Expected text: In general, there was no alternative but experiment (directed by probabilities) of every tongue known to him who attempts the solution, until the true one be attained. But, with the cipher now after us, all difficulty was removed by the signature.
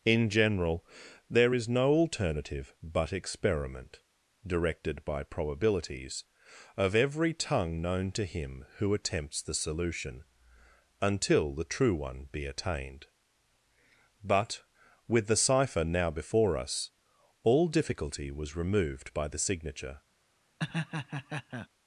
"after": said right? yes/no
no